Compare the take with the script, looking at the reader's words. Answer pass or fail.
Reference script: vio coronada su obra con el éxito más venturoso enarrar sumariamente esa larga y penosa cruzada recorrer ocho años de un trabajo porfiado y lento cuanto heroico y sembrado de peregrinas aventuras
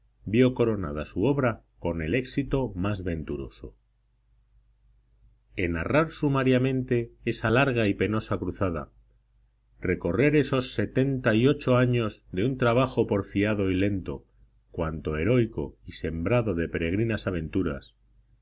fail